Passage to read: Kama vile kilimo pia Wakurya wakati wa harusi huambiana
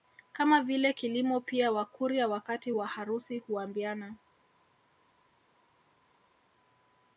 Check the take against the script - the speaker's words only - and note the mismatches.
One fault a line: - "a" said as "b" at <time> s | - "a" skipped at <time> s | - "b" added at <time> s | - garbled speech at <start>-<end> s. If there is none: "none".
none